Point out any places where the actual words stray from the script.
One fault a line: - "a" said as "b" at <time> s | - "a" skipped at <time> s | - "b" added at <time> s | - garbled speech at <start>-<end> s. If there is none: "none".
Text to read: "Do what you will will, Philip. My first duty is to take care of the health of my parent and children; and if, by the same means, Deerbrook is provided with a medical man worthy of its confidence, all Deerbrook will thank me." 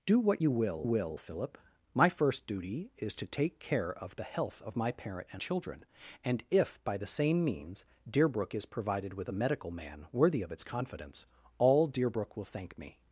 none